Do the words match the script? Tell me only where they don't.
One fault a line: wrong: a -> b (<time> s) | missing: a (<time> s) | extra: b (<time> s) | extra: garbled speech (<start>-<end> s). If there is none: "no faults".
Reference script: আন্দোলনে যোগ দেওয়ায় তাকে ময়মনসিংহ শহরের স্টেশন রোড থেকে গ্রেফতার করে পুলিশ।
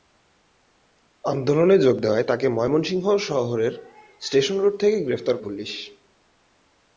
missing: করে (5.4 s)